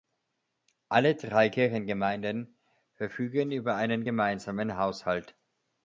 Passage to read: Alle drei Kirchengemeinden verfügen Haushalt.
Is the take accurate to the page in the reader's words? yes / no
no